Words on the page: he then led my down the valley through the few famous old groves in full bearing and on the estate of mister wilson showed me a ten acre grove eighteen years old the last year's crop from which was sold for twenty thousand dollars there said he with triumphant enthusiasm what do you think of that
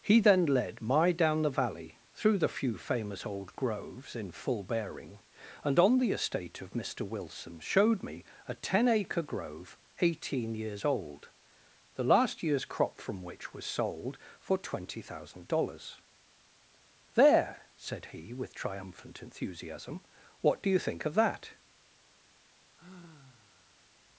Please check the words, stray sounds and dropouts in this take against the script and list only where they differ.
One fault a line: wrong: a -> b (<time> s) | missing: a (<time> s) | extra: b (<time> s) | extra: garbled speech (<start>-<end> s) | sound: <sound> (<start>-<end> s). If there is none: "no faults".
sound: sigh (22.8-23.9 s)